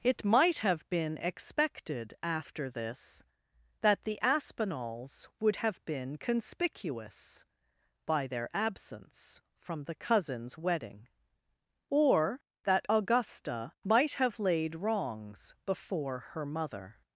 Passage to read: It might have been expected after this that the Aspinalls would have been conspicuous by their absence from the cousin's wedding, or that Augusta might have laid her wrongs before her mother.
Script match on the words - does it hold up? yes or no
no